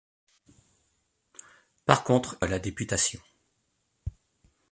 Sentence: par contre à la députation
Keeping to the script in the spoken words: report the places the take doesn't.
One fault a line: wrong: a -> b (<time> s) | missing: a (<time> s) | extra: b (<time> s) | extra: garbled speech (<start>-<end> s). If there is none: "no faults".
no faults